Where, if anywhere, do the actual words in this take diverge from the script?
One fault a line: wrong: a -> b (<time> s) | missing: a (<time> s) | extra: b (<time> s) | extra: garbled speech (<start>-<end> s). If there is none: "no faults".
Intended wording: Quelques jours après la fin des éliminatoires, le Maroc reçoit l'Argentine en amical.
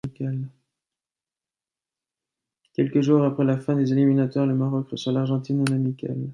no faults